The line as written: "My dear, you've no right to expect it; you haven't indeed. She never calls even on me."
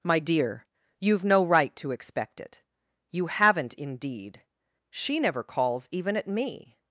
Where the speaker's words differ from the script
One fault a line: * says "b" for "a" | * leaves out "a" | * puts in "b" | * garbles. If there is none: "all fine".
* says "at" for "on"